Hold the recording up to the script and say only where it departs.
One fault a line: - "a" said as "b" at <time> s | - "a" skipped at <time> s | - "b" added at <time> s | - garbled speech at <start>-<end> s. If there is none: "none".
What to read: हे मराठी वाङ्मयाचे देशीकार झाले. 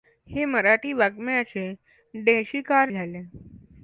none